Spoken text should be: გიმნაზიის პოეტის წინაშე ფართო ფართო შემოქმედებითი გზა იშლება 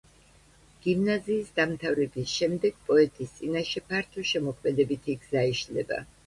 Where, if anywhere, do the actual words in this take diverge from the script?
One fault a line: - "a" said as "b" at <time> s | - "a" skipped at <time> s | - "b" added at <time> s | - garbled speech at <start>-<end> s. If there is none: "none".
- "დამთავრების შემდეგ" added at 1.6 s
- "ფართო" skipped at 4.2 s